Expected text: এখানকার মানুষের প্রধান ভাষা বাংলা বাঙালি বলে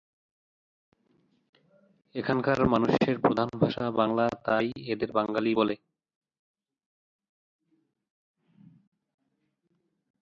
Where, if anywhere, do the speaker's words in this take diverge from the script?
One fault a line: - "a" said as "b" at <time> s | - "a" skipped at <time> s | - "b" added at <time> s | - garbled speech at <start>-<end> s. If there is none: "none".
- "তাই এদের" added at 4.5 s